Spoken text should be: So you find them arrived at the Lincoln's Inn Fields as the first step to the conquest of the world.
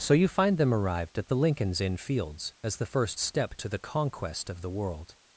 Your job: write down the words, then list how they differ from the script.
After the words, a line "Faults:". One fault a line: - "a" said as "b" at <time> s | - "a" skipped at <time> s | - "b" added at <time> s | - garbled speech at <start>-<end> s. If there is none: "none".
So you find them arrived at the Lincoln's Inn Fields as the first step to the conquest of the world.
Faults:
none